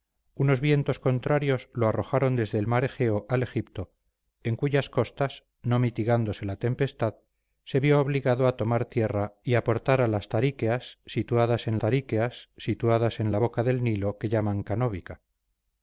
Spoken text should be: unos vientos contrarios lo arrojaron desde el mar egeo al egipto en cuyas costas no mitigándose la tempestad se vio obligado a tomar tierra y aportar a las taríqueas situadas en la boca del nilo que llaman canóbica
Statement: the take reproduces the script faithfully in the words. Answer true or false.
false